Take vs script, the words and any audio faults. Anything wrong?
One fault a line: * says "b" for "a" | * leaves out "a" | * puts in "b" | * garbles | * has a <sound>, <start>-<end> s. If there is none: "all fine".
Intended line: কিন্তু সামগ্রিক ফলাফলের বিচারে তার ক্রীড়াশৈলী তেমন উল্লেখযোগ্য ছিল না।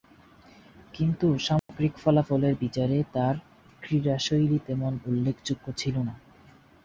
* has a dropout, 1.6-1.7 s